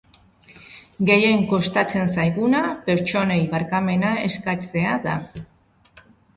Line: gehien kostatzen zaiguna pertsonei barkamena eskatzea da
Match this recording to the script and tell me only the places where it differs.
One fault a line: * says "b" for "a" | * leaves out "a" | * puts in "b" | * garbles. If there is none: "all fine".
all fine